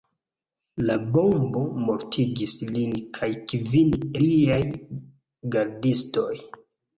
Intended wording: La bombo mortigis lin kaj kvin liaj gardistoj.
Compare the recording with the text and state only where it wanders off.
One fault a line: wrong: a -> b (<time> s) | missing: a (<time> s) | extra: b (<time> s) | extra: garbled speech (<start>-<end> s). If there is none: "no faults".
no faults